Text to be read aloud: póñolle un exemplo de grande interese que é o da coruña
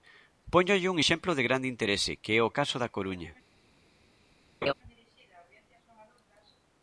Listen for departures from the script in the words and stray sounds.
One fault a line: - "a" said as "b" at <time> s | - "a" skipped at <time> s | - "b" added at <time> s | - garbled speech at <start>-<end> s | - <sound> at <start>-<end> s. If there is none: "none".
- "caso" added at 2.6 s
- laugh at 4.6-4.7 s